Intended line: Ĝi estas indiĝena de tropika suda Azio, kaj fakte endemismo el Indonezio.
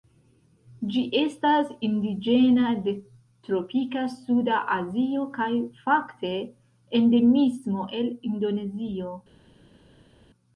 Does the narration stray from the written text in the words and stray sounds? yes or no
no